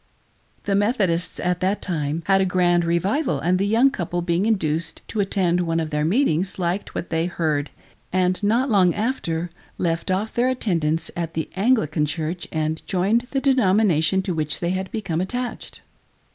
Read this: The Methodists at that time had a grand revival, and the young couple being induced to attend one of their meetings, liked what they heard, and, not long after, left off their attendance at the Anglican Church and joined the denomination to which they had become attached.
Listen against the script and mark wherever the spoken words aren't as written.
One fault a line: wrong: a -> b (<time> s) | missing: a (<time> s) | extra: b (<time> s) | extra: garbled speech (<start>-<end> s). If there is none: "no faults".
no faults